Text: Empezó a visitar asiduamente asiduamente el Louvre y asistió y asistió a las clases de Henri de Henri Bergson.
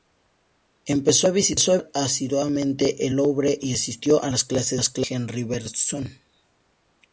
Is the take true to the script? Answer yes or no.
no